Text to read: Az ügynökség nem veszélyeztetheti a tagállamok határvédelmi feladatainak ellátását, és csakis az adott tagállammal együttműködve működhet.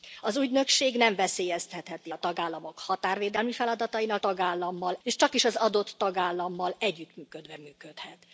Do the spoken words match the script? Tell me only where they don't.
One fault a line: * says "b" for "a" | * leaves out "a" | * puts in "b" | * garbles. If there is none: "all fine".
* says "tagállammal" for "ellátását"